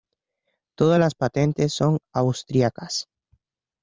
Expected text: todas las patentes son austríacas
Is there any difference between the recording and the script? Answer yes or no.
no